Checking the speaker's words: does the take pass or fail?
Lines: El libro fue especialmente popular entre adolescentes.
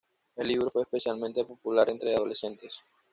pass